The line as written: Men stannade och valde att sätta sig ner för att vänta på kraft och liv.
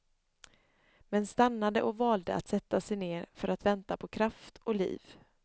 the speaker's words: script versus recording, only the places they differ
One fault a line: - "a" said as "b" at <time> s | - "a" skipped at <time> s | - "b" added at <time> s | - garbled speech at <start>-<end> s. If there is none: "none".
none